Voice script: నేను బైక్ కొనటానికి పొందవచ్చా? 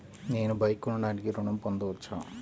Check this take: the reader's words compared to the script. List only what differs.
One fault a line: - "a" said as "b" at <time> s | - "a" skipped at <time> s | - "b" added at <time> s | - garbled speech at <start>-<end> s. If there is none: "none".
- "ఋణం" added at 1.3 s